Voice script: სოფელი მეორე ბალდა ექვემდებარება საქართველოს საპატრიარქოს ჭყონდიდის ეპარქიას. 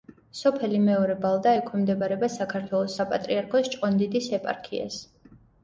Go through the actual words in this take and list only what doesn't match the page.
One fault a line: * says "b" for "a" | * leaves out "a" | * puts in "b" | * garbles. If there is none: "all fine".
all fine